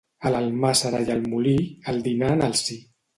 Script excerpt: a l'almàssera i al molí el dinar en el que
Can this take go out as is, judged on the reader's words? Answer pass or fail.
fail